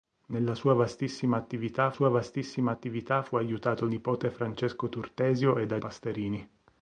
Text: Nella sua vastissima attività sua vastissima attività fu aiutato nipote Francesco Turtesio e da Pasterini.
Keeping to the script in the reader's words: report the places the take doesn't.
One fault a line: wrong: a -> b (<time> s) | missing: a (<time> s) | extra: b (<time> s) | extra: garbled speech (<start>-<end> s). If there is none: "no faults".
no faults